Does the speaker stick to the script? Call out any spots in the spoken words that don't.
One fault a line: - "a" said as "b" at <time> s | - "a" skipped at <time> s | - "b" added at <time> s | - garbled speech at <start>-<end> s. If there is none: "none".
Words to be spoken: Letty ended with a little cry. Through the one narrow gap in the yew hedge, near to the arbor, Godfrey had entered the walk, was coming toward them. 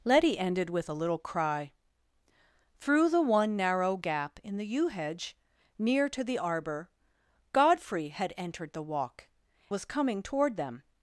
none